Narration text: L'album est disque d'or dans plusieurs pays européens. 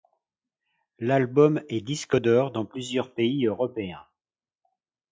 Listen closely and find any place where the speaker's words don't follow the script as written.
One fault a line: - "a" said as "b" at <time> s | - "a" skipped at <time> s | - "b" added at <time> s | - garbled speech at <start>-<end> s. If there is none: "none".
none